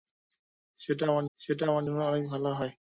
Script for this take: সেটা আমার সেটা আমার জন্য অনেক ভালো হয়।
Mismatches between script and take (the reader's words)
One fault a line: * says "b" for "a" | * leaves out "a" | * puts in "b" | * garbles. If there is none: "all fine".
all fine